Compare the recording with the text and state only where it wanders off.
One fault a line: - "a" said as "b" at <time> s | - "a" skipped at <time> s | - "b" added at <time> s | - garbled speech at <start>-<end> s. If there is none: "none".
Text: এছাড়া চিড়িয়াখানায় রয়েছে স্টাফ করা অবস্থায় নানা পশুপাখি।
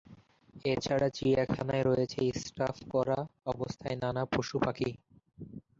none